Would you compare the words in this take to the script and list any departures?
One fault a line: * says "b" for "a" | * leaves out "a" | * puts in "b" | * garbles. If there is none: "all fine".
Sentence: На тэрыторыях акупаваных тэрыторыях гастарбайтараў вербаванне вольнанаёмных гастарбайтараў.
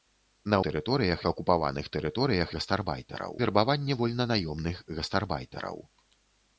all fine